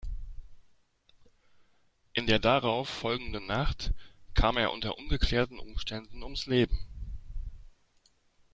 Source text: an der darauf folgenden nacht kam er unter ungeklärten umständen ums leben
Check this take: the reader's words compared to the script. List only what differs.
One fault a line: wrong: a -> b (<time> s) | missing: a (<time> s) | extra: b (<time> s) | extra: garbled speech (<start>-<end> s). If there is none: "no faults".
wrong: an -> in (2.1 s)